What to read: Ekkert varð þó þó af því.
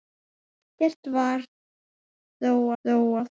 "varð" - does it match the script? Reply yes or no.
yes